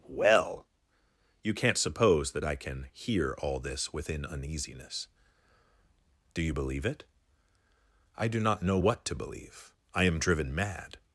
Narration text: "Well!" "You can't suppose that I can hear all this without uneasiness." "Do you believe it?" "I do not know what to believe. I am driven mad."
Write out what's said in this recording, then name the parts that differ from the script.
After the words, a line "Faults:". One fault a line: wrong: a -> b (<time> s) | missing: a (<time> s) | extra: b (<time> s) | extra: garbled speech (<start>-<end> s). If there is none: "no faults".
"Well!" "You can't suppose that I can hear all this within uneasiness." "Do you believe it?" "I do not know what to believe. I am driven mad."
Faults:
wrong: without -> within (3.9 s)